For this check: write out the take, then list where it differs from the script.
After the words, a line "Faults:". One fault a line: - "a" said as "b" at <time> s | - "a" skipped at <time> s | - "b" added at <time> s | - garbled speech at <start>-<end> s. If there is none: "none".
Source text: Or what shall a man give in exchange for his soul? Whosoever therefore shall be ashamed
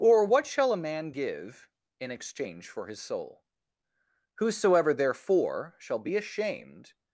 Or what shall a man give in exchange for his soul? Whosoever therefore shall be ashamed
Faults:
none